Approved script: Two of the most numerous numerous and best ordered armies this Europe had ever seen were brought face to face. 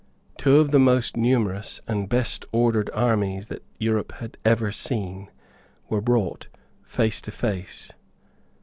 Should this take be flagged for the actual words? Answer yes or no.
yes